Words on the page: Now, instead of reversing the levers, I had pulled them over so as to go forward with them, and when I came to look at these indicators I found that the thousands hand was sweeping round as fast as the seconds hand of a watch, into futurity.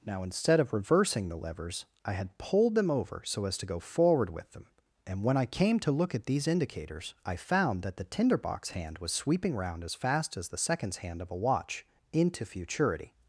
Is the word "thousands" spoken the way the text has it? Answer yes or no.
no